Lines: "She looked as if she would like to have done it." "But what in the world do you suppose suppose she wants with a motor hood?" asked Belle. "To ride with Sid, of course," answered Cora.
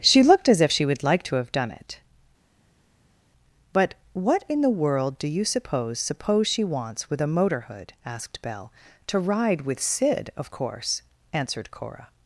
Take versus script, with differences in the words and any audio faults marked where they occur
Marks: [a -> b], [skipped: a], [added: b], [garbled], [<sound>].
"She looked as if she would like to have done it." "But what in the world do you suppose suppose she wants with a motor hood?" asked Belle. "To ride with Sid, of course," answered Cora.